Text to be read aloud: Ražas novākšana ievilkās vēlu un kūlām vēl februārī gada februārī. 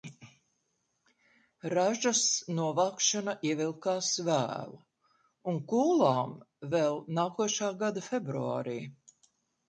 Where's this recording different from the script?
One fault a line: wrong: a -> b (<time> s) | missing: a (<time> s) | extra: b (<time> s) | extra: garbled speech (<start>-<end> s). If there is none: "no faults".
wrong: februārī -> nākošā (7.2 s)